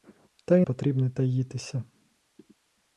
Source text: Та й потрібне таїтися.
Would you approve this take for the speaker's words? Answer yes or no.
yes